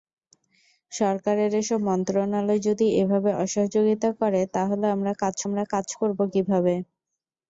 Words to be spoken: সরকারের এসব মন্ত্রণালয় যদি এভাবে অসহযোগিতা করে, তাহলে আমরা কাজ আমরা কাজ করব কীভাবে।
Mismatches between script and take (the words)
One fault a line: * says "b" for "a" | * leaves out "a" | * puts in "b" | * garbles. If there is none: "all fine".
all fine